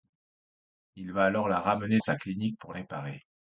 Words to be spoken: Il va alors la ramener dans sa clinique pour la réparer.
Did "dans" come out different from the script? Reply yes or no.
yes